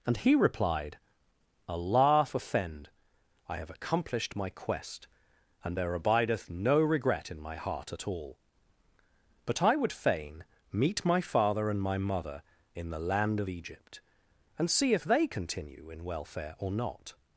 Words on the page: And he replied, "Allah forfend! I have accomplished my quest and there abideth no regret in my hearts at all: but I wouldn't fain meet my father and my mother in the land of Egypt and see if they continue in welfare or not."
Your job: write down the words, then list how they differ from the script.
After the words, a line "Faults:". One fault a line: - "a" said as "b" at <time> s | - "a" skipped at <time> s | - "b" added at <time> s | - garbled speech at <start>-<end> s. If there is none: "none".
And he replied, "Allah forfend! I have accomplished my quest and there abideth no regret in my heart at all: but I would fain meet my father and my mother in the land of Egypt and see if they continue in welfare or not."
Faults:
- "hearts" said as "heart" at 7.6 s
- "wouldn't" said as "would" at 9.8 s